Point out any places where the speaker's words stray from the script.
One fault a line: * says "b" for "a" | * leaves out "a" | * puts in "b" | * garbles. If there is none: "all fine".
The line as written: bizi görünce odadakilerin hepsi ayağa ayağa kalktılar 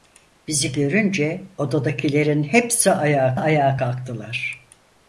all fine